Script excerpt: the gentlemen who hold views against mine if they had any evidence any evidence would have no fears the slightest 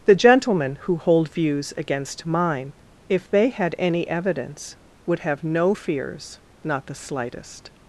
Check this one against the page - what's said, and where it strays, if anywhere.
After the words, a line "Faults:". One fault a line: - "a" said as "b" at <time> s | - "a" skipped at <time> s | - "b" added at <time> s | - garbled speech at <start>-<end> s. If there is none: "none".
the gentlemen who hold views against mine if they had any evidence would have no fears not the slightest
Faults:
- "any evidence" skipped at 4.8 s
- "not" added at 6.6 s